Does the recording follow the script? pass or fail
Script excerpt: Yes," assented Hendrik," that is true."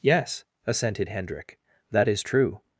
pass